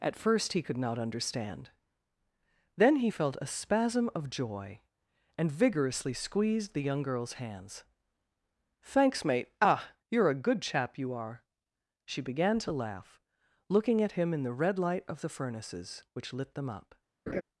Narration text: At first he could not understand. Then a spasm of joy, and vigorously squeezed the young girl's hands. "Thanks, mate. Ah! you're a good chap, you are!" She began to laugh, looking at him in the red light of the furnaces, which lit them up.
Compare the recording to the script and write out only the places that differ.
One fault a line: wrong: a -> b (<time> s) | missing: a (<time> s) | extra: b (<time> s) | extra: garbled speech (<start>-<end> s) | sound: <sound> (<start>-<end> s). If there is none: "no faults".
extra: he felt (3.0 s)
sound: laugh (17.3-17.4 s)